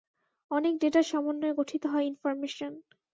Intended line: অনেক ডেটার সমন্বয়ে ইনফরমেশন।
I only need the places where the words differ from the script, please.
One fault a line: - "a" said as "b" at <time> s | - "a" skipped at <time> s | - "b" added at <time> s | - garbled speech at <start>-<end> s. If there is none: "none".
- "গঠিত হয়" added at 1.6 s